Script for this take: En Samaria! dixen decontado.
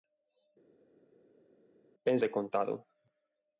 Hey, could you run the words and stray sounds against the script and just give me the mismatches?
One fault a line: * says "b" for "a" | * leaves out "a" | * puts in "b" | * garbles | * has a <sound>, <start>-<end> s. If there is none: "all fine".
* leaves out "Samaria dixen"